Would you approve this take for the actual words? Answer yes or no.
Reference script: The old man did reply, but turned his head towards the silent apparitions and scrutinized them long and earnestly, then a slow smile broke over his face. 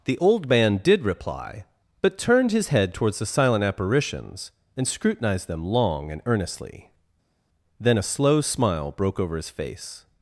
yes